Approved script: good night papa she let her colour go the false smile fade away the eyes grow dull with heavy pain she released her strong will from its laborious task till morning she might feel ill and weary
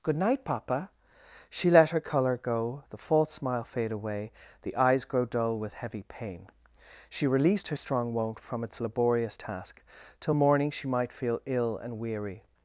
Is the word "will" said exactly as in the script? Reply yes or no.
no